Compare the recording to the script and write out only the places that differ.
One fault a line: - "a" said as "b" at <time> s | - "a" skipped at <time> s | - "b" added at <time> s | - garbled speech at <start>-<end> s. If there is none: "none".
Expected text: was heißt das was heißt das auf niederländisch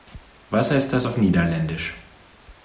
- "was heißt das" skipped at 1.1 s